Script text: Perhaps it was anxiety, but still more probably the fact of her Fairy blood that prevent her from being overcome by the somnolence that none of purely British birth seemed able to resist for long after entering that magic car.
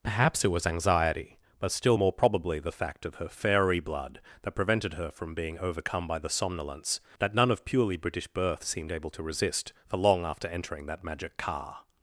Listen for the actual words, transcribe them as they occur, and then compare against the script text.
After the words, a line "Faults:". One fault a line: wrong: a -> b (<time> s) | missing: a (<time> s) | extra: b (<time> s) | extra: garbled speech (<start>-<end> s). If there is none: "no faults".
Perhaps it was anxiety, but still more probably the fact of her Fairy blood that prevented her from being overcome by the somnolence that none of purely British birth seemed able to resist for long after entering that magic car.
Faults:
wrong: prevent -> prevented (4.5 s)